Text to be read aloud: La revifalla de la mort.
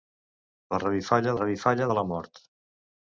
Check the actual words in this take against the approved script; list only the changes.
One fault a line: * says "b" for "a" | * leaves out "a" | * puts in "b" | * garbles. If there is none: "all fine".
* puts in "revifalla"